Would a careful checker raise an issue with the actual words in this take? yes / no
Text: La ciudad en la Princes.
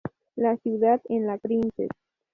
no